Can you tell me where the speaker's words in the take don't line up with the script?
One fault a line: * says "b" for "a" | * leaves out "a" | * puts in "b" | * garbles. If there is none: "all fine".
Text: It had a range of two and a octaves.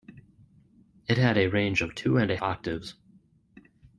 all fine